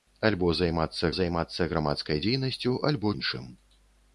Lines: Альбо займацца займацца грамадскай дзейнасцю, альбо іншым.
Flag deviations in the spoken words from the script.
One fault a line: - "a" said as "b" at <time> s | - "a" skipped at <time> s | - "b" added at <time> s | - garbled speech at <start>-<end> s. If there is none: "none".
none